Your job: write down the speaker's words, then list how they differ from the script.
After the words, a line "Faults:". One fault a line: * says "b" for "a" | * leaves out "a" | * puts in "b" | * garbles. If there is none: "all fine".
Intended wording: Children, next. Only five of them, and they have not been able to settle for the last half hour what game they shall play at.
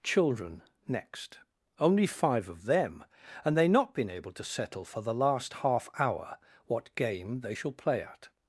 Children, next. Only five of them, and they not been able to settle for the last half hour what game they shall play at.
Faults:
* leaves out "have"